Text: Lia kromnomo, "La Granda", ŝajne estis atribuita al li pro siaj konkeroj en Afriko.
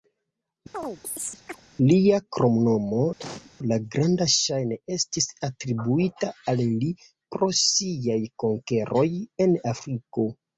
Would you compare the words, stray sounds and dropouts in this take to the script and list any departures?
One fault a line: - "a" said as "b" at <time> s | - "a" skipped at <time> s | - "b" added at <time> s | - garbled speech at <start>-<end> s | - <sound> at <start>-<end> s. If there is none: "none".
- chirp at 0.7-1.6 s
- cough at 3.2-3.5 s